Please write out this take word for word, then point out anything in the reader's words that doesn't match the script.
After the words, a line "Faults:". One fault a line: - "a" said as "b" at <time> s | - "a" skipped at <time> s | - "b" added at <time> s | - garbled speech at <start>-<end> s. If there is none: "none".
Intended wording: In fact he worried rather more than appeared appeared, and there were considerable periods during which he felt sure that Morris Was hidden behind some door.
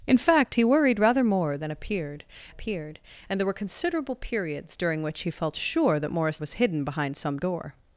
In fact he worried rather more than appeared appeared, and there were considerable periods during which he felt sure that Morris Was hidden behind some door.
Faults:
none